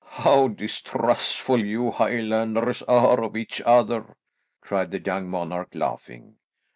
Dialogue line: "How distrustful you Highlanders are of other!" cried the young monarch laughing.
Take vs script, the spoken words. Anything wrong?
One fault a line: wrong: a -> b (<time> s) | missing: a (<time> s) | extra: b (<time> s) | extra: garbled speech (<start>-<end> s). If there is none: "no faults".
extra: each (3.4 s)